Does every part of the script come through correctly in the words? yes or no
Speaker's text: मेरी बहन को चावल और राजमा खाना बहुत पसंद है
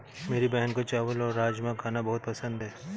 yes